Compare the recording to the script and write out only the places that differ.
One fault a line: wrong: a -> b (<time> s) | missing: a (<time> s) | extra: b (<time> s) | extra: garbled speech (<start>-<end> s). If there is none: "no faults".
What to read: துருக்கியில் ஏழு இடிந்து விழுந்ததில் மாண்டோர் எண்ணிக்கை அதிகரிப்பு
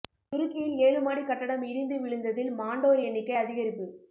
extra: மாடி கட்டடம் (1.0 s)